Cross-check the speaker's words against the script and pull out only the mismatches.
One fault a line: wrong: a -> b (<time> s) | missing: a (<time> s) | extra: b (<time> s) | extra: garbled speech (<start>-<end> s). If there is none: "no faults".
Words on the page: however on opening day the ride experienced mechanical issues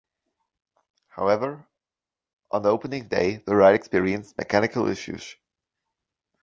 no faults